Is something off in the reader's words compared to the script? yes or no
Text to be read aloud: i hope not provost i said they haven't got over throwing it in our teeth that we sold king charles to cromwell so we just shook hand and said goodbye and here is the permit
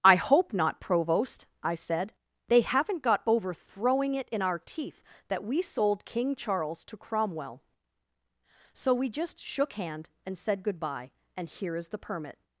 no